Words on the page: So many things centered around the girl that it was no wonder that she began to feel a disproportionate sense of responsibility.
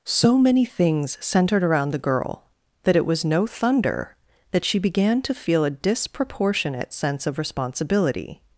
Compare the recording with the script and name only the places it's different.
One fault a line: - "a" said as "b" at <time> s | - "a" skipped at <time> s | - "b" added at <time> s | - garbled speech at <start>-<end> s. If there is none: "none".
- "wonder" said as "thunder" at 3.5 s